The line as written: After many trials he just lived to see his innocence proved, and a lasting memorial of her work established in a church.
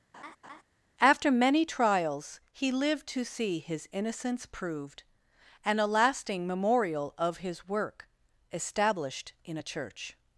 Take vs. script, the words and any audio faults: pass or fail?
fail